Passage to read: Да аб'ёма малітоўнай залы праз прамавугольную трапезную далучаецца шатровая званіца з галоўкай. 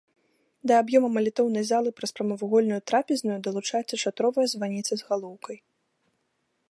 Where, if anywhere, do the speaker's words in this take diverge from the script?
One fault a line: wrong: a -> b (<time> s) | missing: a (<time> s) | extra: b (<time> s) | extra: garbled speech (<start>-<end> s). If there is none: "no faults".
no faults